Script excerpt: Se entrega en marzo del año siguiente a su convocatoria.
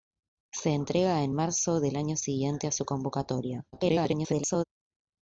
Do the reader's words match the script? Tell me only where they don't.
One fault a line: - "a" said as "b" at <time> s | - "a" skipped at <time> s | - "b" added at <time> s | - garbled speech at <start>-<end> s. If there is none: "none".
- garbled speech at 3.7-4.6 s